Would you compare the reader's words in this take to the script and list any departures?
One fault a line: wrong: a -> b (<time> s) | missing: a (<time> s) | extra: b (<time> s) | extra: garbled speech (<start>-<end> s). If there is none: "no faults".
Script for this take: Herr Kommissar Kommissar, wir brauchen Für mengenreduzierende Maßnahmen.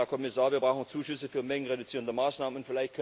missing: Kommissar (0.5 s)
extra: Zuschüsse (0.9 s)